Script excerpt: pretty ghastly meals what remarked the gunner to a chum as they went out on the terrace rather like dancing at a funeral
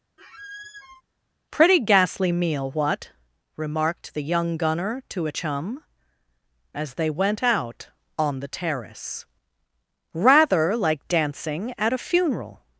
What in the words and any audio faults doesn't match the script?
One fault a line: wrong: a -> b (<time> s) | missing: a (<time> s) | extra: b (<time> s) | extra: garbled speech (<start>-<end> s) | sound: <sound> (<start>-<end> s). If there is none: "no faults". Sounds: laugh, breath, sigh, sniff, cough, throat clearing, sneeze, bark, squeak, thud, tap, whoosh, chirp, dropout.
sound: squeak (0.2-1.0 s)
wrong: meals -> meal (2.3 s)
extra: young (4.2 s)